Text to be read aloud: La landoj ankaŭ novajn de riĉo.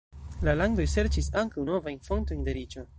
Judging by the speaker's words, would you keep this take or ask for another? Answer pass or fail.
fail